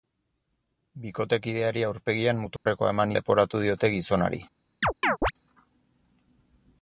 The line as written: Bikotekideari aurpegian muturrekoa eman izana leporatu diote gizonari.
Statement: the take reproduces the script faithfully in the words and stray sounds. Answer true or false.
false